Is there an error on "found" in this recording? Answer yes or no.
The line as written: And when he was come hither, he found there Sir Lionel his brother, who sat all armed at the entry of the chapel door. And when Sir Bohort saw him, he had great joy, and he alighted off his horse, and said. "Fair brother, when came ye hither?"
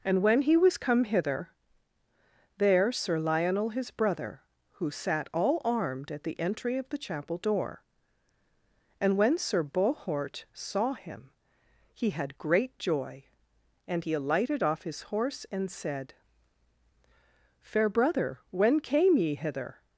yes